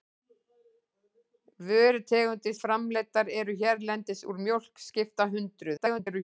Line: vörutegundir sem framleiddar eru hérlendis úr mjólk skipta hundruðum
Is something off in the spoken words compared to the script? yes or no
yes